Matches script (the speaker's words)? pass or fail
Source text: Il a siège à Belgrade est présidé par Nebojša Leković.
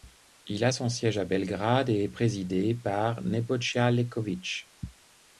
fail